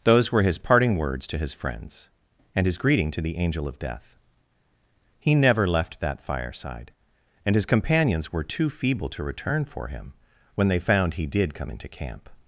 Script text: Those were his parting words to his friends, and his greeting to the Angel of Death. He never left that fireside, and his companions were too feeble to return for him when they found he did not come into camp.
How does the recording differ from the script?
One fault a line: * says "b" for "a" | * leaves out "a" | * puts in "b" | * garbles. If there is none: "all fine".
* leaves out "not"